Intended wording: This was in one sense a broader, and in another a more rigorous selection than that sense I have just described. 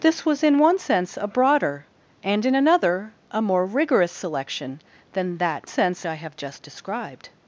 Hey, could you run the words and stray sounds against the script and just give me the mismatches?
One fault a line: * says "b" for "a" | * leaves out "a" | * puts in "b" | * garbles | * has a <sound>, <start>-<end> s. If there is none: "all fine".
all fine